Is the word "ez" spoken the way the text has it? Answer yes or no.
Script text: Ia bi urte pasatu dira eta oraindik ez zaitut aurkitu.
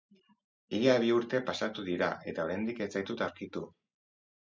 yes